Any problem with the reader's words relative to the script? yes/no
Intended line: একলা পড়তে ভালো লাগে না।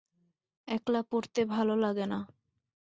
no